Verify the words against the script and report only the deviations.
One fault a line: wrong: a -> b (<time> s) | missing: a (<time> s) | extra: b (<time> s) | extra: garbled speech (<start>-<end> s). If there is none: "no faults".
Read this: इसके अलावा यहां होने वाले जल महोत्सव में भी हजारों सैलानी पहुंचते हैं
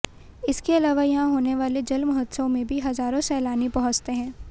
no faults